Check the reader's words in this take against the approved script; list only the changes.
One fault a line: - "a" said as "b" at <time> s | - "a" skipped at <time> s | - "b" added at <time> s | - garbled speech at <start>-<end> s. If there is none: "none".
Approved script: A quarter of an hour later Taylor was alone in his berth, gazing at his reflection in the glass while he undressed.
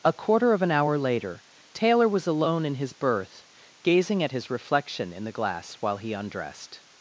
none